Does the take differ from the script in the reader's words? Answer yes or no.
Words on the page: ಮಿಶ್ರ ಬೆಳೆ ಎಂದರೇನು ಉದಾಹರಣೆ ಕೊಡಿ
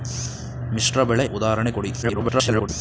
yes